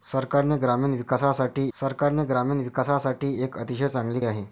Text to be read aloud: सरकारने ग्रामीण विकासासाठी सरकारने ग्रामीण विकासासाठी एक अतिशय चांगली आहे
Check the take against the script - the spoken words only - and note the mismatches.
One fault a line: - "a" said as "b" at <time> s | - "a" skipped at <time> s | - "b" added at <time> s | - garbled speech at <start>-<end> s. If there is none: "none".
none